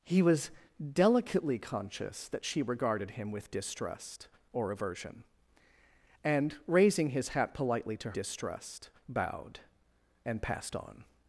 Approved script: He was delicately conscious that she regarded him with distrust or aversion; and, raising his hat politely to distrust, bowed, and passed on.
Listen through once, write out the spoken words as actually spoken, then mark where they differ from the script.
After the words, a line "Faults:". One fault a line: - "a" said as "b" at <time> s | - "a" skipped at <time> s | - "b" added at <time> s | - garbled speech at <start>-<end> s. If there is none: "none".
He was delicately conscious that she regarded him with distrust or aversion; and, raising his hat politely to distrust, bowed, and passed on.
Faults:
none